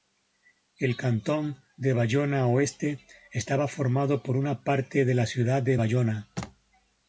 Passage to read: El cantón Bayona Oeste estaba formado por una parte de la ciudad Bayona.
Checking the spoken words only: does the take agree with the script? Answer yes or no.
no